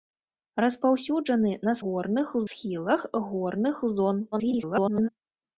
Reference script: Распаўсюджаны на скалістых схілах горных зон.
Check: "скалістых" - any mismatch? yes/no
yes